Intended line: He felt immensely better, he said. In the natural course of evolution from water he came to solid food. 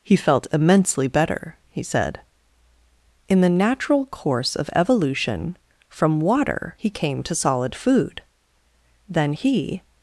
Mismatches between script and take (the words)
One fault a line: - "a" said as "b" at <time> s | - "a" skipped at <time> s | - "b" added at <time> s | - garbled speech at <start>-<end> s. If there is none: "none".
- "Then he" added at 9.1 s